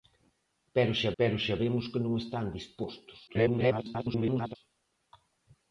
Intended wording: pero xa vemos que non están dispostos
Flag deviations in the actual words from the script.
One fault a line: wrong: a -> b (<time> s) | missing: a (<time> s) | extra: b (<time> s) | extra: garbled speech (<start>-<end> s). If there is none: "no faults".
extra: pero xa (1.2 s)
extra: garbled speech (3.3-4.6 s)